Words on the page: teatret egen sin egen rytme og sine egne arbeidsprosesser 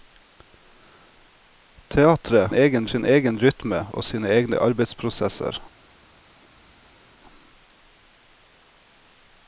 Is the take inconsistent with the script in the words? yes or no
no